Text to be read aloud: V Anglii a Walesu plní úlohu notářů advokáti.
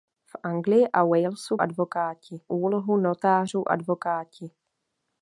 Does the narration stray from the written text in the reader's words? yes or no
yes